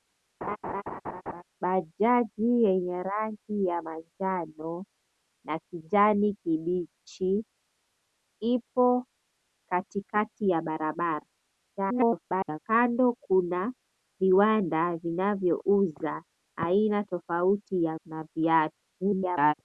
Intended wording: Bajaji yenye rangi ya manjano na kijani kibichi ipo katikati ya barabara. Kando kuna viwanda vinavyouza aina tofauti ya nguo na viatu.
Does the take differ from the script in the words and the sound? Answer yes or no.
yes